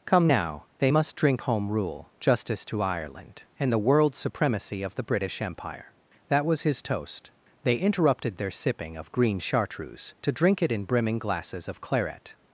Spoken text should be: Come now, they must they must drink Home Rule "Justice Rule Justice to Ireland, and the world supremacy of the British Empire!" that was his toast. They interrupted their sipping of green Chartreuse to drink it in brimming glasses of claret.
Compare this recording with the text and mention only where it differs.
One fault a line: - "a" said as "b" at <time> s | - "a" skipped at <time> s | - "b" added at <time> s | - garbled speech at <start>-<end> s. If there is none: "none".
- "they must" skipped at 1.2 s
- "Rule Justice" skipped at 2.6 s